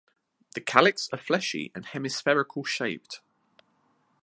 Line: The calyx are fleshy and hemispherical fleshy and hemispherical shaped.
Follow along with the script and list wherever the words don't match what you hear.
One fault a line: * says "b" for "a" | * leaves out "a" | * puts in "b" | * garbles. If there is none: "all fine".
* leaves out "fleshy and hemispherical"